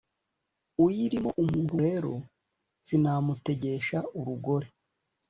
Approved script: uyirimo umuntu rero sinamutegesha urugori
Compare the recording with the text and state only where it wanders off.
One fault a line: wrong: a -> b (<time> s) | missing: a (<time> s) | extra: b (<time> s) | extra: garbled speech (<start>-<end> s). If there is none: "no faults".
no faults